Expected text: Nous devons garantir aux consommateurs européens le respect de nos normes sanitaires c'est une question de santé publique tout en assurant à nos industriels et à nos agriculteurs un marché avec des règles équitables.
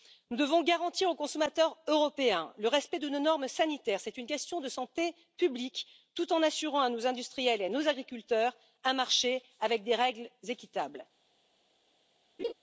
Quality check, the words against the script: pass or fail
pass